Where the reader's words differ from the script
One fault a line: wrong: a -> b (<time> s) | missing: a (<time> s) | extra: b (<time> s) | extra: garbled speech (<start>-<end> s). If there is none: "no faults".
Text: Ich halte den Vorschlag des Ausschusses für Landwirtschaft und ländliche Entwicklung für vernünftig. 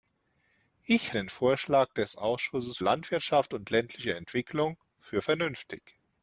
missing: halte (1.1 s)
missing: für (2.8 s)